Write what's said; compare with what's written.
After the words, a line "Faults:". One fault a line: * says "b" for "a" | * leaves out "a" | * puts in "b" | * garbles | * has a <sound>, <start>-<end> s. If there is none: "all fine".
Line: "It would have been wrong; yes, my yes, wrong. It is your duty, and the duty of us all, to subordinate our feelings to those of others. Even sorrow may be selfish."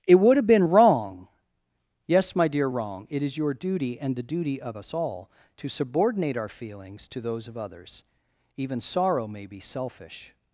"It would have been wrong; yes, my dear, wrong. It is your duty, and the duty of us all, to subordinate our feelings to those of others. Even sorrow may be selfish."
Faults:
* says "dear" for "yes"